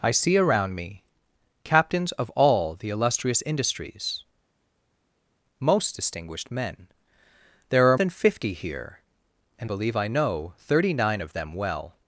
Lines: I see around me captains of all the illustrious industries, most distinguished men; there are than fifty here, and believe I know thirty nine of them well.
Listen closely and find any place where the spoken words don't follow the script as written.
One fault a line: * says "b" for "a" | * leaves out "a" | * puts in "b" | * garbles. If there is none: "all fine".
all fine